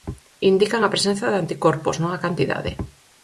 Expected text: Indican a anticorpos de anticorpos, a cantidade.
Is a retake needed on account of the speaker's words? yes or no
yes